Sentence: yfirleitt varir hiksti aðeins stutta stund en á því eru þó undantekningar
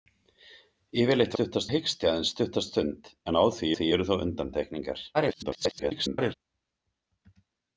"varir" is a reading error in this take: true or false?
true